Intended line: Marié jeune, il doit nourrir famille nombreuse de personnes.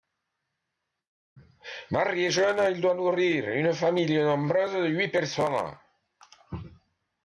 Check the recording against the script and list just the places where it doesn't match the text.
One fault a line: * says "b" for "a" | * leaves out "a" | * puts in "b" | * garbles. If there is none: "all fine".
* puts in "une"
* puts in "huit"